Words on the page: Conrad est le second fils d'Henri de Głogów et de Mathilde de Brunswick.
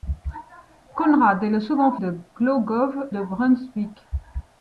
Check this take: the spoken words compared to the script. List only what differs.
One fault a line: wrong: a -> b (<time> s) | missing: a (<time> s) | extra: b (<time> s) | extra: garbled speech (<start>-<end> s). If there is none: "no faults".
missing: fils d'Henri (1.9 s)
missing: et de Mathilde (2.9 s)